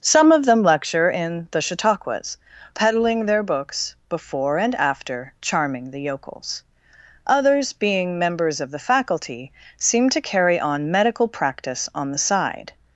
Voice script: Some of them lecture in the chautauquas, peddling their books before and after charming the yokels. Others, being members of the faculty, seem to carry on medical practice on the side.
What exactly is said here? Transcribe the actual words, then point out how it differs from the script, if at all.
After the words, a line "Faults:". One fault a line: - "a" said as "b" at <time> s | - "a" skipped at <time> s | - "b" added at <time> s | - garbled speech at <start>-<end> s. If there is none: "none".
Some of them lecture in the chautauquas, peddling their books before and after charming the yokels. Others, being members of the faculty, seem to carry on medical practice on the side.
Faults:
none